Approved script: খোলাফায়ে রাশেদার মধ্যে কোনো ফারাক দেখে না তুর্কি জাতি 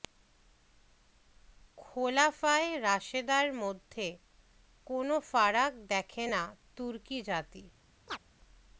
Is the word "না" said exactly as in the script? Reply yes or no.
yes